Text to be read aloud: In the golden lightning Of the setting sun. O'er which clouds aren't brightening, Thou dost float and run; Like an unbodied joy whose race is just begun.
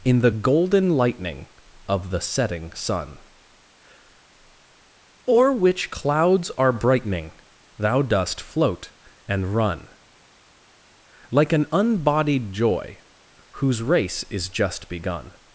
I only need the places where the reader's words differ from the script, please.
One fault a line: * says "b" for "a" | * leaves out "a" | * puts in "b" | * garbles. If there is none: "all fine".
* says "are" for "aren't"